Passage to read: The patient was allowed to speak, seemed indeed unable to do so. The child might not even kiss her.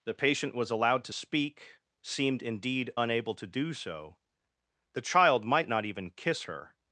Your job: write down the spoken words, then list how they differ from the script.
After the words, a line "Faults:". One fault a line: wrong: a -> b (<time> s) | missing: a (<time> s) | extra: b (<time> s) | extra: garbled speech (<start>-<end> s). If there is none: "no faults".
The patient was allowed to speak, seemed indeed unable to do so. The child might not even kiss her.
Faults:
no faults